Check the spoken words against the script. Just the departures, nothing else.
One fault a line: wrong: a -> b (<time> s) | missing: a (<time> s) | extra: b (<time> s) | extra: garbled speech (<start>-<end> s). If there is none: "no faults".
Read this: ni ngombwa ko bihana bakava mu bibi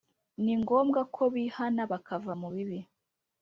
no faults